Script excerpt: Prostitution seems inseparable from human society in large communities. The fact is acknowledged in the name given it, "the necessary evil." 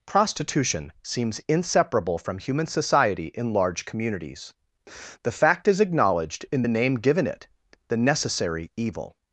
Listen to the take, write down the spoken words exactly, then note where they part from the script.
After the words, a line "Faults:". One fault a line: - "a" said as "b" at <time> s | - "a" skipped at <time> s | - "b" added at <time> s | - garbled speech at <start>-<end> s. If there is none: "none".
Prostitution seems inseparable from human society in large communities. The fact is acknowledged in the name given it, "the necessary evil."
Faults:
none